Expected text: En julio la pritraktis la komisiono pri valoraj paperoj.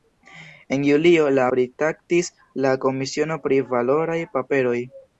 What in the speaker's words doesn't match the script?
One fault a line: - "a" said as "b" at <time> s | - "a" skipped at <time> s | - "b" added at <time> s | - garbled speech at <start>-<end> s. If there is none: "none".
none